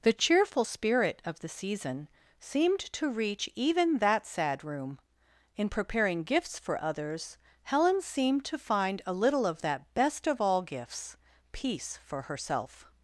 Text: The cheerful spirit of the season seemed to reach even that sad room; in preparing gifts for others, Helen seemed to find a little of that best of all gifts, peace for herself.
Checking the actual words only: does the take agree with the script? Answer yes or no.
yes